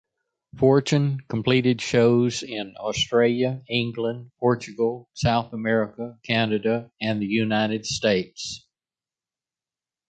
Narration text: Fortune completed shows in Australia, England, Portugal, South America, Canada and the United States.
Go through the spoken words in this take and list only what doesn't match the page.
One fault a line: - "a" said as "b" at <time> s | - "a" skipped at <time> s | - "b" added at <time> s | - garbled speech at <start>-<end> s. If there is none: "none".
none